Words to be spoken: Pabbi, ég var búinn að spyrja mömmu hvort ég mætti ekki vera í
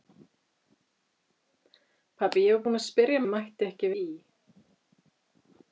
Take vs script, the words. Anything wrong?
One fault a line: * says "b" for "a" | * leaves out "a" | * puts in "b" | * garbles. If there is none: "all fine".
* leaves out "mömmu hvort"
* leaves out "vera"